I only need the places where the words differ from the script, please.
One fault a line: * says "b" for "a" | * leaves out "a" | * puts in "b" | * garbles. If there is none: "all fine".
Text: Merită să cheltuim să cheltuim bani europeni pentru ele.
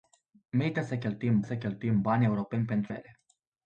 all fine